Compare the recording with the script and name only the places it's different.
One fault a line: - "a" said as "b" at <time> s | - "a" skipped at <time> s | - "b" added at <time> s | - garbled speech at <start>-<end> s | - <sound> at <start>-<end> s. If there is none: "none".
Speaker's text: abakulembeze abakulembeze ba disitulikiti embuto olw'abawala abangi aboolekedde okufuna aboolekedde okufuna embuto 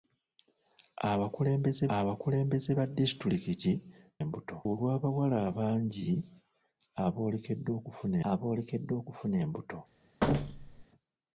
- thud at 10.2-10.8 s